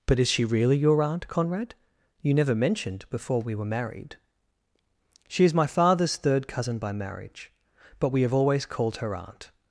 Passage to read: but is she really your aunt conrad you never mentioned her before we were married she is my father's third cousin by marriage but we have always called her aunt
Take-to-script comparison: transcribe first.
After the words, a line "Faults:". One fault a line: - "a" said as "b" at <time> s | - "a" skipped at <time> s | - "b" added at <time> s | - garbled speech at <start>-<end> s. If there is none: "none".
but is she really your aunt conrad you never mentioned before we were married she is my father's third cousin by marriage but we have always called her aunt
Faults:
- "her" skipped at 3.0 s